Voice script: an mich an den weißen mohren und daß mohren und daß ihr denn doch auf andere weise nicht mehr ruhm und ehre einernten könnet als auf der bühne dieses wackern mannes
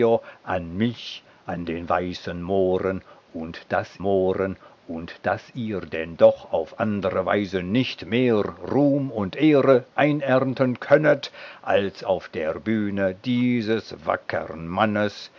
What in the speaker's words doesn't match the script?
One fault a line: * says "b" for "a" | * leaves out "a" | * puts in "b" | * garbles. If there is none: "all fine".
all fine